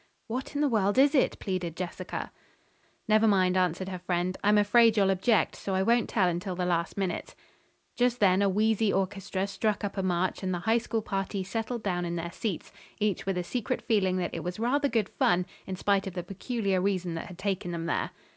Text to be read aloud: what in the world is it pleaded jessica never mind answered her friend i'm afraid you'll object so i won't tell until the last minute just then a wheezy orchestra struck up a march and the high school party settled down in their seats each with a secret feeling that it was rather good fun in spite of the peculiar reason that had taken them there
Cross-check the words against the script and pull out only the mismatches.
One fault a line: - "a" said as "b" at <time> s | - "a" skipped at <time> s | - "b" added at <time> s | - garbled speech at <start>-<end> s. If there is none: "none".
none